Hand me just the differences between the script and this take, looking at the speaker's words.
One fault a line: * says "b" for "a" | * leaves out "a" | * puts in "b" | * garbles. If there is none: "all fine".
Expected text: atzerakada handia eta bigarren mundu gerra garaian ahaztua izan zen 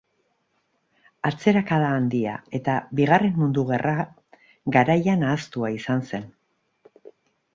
all fine